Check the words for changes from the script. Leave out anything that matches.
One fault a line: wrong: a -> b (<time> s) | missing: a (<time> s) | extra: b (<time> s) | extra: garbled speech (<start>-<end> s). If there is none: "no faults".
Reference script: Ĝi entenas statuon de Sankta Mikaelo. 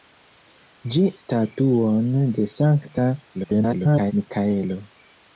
missing: entenas (1.0 s)
extra: garbled speech (3.3-4.1 s)